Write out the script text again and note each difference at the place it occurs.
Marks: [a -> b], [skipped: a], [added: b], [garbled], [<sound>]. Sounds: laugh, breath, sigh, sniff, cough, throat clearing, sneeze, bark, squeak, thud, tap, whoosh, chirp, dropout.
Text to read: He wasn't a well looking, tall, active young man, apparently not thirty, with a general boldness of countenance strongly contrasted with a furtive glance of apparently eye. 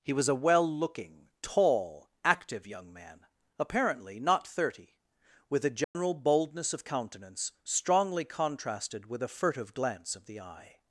He [wasn't -> was] a well looking, tall, active young man, apparently not thirty, with a general [dropout] boldness of countenance strongly contrasted with a furtive glance of [apparently -> the] eye.